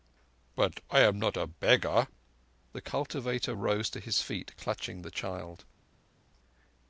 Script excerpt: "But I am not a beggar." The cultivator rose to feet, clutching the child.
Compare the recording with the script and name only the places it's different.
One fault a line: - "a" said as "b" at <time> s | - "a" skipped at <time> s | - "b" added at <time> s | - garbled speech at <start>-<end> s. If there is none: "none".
- "his" added at 4.0 s